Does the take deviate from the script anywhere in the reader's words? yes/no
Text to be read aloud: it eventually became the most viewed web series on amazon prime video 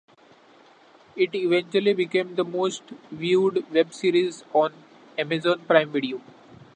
no